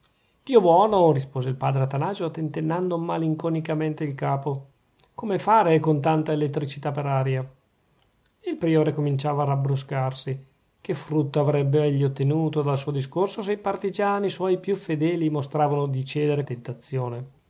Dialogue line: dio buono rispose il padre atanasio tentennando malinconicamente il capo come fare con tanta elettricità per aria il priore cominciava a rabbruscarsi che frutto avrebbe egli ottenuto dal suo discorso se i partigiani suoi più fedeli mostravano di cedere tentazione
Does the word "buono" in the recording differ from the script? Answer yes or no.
no